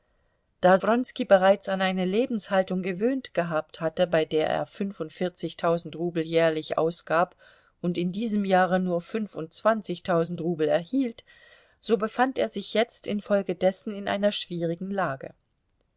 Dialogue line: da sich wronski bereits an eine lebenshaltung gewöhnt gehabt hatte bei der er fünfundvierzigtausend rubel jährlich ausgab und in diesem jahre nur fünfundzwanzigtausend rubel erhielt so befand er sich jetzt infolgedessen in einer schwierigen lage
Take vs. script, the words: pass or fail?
fail